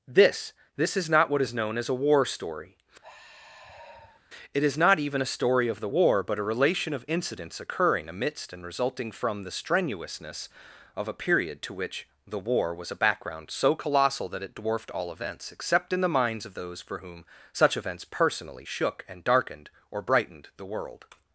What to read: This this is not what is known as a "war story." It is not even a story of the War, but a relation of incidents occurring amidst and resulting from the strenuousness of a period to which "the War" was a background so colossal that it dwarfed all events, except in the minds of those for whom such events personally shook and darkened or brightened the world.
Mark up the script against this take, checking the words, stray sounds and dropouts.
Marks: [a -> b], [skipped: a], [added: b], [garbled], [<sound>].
This this is not what is known as a "war story." [sigh] It is not even a story of the War, but a relation of incidents occurring amidst and resulting from the strenuousness of a period to which "the War" was a background so colossal that it dwarfed all events, except in the minds of those for whom such events personally shook and darkened or brightened the world.